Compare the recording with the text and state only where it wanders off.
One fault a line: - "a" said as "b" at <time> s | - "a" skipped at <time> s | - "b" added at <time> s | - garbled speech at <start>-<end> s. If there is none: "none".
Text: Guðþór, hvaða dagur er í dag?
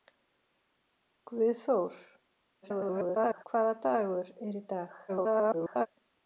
- garbled speech at 2.6-3.4 s
- garbled speech at 5.1-5.9 s